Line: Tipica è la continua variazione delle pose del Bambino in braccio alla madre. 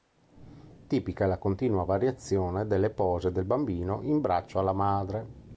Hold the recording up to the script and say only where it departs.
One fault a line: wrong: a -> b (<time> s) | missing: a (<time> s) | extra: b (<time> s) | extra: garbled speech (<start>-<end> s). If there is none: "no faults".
no faults